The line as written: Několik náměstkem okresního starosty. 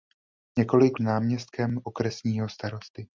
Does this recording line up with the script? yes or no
yes